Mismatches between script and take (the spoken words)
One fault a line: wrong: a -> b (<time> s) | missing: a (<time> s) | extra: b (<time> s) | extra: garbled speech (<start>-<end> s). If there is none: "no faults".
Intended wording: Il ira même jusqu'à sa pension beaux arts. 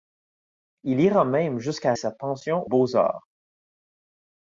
no faults